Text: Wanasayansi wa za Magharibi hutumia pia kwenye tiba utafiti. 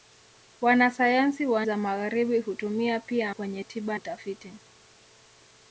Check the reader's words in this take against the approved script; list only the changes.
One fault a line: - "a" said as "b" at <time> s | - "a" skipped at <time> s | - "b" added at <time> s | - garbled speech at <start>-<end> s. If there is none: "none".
none